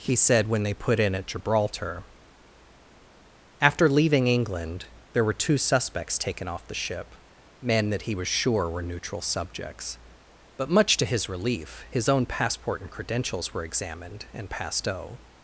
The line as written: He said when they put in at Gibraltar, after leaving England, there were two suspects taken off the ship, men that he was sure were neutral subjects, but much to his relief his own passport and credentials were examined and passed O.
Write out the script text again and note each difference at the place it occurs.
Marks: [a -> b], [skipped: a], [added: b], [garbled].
He said when they put in at Gibraltar, after leaving England, there were two suspects taken off the ship, men that he was sure were neutral subjects, but much to his relief his own passport and credentials were examined and passed O.